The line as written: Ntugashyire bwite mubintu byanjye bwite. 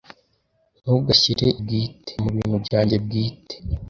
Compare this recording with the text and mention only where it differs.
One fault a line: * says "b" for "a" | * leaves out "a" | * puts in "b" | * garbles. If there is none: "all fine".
all fine